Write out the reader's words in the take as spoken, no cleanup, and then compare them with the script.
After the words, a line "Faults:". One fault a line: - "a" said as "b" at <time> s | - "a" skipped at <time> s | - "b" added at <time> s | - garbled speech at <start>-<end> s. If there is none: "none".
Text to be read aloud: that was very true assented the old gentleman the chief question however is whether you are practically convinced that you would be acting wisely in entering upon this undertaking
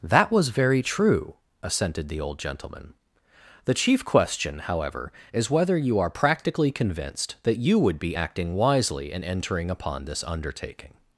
that was very true assented the old gentleman the chief question however is whether you are practically convinced that you would be acting wisely in entering upon this undertaking
Faults:
none